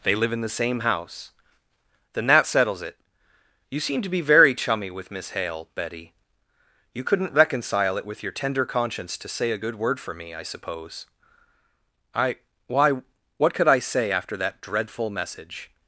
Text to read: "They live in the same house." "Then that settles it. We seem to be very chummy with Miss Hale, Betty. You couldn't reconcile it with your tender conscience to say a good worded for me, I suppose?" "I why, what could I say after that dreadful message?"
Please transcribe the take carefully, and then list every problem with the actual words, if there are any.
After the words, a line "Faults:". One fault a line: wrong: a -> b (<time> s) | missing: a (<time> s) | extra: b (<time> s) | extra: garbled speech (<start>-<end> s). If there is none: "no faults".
"They live in the same house." "Then that settles it. You seem to be very chummy with Miss Hale, Betty. You couldn't reconcile it with your tender conscience to say a good word for me, I suppose?" "I why, what could I say after that dreadful message?"
Faults:
wrong: We -> You (3.7 s)
wrong: worded -> word (9.7 s)